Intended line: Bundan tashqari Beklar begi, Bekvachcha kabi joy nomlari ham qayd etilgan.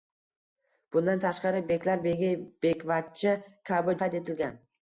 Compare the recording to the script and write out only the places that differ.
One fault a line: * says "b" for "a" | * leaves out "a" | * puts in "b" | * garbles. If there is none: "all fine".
* leaves out "joy nomlari ham"